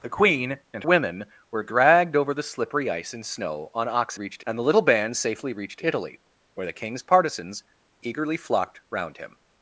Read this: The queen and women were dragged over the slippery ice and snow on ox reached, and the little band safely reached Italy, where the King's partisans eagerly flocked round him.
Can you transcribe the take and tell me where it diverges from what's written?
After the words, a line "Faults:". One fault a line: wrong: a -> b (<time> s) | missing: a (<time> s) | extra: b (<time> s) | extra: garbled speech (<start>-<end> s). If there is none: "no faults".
The queen and women were dragged over the slippery ice and snow on ox reached, and the little band safely reached Italy, where the King's partisans eagerly flocked round him.
Faults:
no faults